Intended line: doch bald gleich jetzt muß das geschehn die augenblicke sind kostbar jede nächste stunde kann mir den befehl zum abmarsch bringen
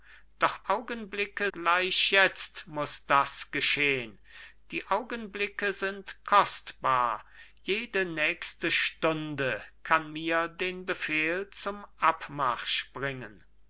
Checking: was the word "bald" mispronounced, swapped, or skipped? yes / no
yes